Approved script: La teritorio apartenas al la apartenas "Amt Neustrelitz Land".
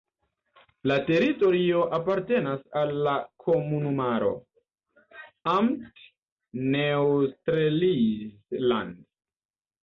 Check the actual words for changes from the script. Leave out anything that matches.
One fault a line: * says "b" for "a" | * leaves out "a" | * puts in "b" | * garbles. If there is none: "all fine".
* says "komunumaro" for "apartenas"